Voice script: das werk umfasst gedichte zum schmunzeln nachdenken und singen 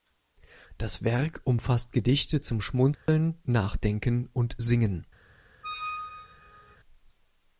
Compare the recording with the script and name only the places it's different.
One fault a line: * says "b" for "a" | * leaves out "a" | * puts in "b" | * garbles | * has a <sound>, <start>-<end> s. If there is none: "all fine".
* has a dropout, 2.9-3.1 s
* has a squeak, 5.6-6.8 s